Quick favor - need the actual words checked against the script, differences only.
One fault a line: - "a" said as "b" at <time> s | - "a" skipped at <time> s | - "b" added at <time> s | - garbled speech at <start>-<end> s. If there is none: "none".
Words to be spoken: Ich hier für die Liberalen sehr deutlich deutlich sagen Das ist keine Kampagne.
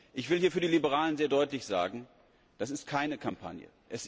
- "will" added at 0.3 s
- "deutlich" skipped at 1.6 s